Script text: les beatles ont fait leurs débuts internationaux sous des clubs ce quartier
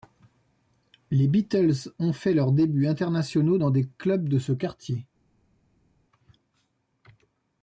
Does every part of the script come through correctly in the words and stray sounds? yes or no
no